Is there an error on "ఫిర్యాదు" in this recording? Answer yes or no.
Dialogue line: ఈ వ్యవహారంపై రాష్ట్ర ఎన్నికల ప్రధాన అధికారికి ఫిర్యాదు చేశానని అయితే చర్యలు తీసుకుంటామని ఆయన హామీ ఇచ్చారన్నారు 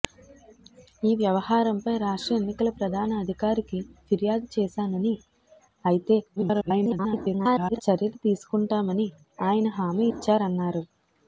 no